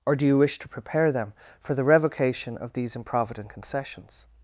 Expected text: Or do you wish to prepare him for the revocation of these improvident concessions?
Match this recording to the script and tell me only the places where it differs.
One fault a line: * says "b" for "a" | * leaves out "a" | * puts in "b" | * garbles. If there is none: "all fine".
* says "them" for "him"